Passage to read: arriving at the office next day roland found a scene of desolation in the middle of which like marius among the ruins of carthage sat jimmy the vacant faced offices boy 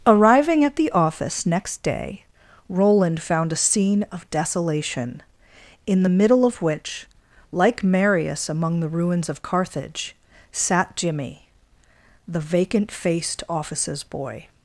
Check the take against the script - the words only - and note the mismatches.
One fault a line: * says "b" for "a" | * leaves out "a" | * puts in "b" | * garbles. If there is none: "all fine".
all fine